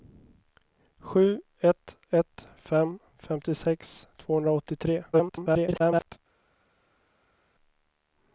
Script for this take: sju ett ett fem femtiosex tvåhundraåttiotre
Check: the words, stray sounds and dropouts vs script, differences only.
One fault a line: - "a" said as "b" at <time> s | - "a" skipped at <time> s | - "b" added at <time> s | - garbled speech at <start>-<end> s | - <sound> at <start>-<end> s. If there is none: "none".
- garbled speech at 5.1-6.2 s